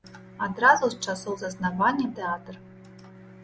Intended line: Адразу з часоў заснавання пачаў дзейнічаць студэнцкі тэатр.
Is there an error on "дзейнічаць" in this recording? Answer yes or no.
yes